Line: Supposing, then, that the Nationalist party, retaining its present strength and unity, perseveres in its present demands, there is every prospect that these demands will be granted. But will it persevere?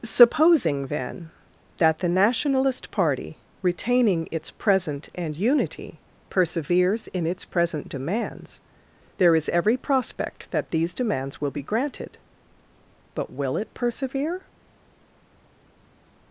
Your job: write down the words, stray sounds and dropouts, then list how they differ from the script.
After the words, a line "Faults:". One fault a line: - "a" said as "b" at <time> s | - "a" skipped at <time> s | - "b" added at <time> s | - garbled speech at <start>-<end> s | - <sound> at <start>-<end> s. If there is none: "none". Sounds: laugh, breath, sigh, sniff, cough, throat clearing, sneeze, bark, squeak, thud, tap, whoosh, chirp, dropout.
Supposing, then, that the Nationalist party, retaining its present and unity, perseveres in its present demands, there is every prospect that these demands will be granted. But will it persevere?
Faults:
- "strength" skipped at 5.1 s